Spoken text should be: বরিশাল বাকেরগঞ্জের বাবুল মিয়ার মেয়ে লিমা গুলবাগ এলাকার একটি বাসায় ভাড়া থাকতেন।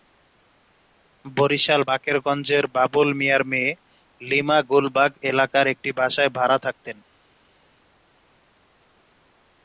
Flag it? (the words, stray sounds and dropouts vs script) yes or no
no